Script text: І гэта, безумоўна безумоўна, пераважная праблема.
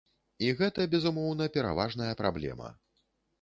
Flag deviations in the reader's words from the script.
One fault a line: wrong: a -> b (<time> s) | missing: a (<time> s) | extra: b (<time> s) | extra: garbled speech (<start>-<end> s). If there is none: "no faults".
missing: безумоўна (1.5 s)